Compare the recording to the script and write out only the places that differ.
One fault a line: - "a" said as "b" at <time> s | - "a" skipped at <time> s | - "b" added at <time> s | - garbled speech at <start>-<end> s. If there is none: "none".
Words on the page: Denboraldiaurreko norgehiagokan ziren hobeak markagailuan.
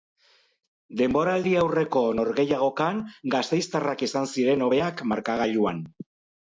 - "gasteiztarrak izan" added at 3.4 s